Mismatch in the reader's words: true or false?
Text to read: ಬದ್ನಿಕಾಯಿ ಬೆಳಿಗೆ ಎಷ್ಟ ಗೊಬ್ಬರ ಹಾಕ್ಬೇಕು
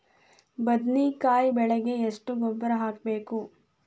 false